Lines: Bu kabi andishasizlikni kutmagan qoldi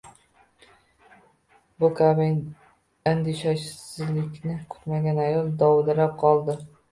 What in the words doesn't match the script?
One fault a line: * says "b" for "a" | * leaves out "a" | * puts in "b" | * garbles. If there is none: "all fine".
* puts in "ayol dovdirab"